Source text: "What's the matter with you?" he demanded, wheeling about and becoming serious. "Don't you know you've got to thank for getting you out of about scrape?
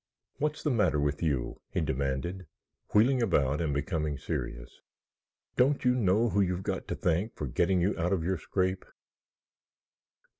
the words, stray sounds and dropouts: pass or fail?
fail